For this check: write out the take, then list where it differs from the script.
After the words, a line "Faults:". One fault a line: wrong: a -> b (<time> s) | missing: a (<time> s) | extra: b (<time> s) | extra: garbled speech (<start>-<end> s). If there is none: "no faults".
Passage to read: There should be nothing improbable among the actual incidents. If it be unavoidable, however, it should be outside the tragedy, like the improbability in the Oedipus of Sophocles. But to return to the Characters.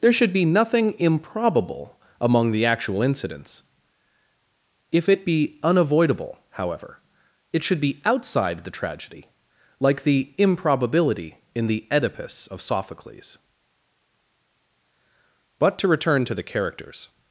There should be nothing improbable among the actual incidents. If it be unavoidable, however, it should be outside the tragedy, like the improbability in the Oedipus of Sophocles. But to return to the Characters.
Faults:
no faults